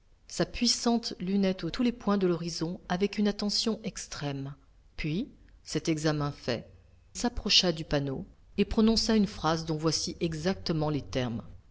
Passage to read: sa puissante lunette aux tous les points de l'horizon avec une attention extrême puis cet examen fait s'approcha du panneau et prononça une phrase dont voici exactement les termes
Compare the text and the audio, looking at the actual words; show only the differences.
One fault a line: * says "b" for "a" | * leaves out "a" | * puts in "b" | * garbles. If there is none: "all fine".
all fine